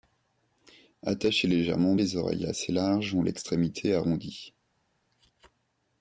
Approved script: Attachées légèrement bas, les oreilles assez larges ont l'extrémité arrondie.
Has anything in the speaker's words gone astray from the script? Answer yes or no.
yes